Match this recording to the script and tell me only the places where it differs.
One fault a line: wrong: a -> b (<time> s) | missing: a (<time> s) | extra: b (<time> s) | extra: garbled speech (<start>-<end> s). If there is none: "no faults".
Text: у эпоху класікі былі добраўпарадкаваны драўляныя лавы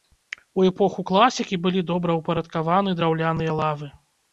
no faults